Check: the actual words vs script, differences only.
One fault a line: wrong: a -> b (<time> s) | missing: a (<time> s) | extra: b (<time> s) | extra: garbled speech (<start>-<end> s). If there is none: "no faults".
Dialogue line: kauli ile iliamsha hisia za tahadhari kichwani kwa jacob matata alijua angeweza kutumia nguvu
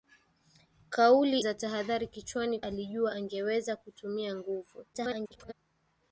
missing: ile iliamsha hisia (1.4 s)
missing: kwa jacob matata (2.6 s)
extra: garbled speech (4.9-5.5 s)